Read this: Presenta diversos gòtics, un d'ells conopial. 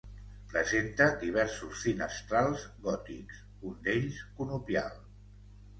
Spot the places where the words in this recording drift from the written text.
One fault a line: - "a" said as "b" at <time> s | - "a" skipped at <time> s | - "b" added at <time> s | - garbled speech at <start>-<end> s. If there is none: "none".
- "finestrals" added at 1.9 s